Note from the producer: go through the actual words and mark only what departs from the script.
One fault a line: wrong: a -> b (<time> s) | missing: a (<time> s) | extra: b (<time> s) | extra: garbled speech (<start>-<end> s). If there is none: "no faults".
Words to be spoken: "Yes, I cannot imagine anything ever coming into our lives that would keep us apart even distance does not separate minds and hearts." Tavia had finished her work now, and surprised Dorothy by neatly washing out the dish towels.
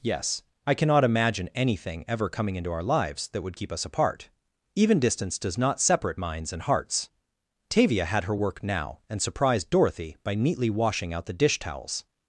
missing: finished (8.2 s)